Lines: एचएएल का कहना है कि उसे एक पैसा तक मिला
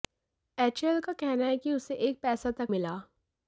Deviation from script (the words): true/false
false